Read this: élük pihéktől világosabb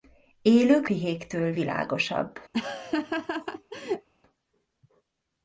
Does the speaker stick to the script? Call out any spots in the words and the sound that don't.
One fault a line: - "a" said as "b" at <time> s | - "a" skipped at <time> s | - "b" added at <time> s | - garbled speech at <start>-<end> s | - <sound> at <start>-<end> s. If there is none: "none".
- laugh at 2.5-4.1 s